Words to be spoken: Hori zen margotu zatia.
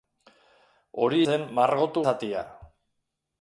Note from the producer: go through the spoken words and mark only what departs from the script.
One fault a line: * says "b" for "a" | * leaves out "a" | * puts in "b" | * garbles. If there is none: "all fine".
all fine